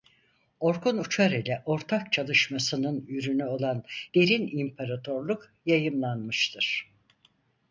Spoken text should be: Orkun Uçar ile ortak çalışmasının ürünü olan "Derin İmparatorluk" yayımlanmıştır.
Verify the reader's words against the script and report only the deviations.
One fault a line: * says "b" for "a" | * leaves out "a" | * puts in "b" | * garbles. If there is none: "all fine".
all fine